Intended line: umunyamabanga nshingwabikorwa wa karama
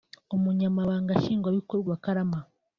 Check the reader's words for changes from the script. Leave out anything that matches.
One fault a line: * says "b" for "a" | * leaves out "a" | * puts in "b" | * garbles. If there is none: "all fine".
all fine